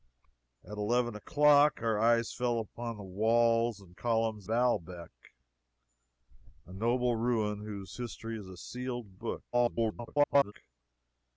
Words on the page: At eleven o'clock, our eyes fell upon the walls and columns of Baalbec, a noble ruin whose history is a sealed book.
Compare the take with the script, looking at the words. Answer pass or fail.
fail